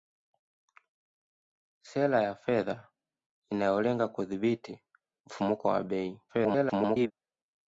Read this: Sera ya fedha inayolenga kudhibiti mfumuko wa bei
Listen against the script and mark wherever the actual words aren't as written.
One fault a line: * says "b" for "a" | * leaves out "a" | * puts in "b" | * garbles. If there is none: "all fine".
* garbles